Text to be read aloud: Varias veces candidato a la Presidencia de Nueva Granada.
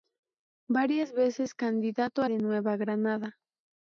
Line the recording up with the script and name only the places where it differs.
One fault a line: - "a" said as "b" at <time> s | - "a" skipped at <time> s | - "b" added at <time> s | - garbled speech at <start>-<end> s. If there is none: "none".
- "la Presidencia" skipped at 2.3 s